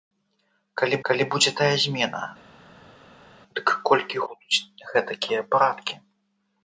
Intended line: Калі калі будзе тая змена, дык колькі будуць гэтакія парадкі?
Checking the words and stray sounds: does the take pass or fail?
pass